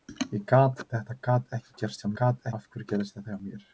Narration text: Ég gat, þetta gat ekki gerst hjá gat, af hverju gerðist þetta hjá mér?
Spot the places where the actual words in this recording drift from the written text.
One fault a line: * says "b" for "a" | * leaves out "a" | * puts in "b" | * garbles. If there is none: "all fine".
all fine